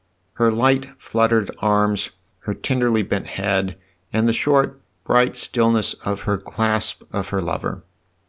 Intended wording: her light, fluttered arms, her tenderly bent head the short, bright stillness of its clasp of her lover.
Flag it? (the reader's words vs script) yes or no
yes